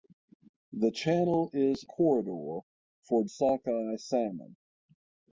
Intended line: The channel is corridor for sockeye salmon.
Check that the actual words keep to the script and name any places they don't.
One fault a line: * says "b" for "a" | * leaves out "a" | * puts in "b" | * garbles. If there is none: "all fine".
all fine